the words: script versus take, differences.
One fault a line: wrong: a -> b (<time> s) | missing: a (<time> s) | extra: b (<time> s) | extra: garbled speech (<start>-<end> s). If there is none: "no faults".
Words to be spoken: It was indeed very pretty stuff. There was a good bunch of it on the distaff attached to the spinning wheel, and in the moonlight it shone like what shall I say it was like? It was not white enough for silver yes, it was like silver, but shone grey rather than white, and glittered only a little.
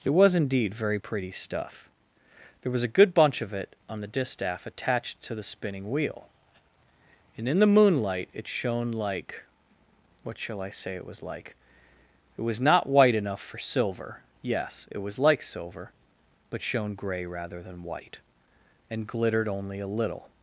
no faults